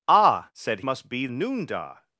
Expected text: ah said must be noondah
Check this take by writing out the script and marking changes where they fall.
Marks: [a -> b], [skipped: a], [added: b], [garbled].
ah said must be noondah